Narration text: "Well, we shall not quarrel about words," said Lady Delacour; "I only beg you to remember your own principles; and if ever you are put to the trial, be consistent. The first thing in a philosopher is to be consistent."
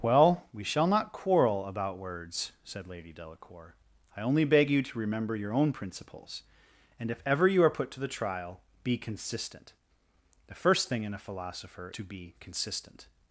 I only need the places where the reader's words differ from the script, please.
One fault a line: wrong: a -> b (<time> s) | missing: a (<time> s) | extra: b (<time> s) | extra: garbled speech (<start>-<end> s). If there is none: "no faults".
missing: is (11.9 s)